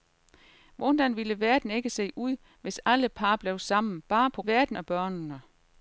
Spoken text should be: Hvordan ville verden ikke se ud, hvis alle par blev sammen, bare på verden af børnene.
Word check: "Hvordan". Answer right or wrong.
right